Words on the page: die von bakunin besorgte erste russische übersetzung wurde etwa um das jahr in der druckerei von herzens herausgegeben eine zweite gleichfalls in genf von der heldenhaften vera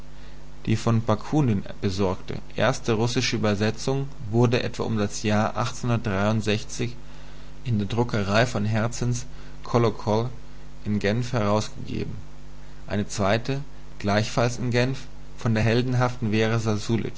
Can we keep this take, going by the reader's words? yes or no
no